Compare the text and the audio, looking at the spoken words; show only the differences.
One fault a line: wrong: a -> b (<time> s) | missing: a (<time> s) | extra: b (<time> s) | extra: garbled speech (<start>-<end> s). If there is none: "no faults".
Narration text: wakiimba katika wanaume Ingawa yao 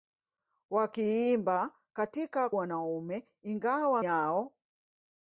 no faults